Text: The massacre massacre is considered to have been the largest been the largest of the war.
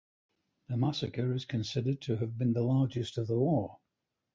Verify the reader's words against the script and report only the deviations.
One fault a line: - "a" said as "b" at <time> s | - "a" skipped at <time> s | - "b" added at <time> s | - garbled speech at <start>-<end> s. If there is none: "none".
- "massacre" skipped at 1.3 s
- "been the largest" skipped at 3.2 s